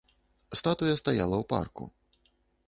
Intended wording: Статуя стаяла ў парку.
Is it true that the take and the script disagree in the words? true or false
false